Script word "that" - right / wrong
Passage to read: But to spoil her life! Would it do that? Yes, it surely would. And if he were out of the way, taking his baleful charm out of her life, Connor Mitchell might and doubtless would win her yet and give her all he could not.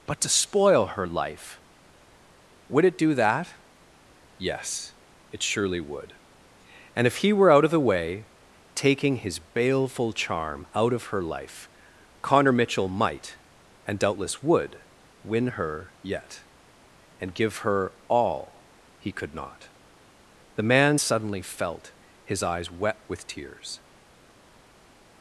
right